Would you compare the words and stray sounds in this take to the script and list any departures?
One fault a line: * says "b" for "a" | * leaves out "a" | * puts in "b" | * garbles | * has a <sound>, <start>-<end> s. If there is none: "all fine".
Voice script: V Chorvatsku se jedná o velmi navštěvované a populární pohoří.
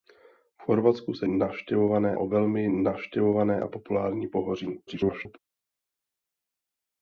* says "navštěvované" for "jedná"
* garbles